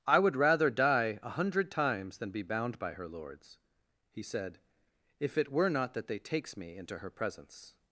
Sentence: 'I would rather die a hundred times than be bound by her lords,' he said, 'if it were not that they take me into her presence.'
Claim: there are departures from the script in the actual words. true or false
true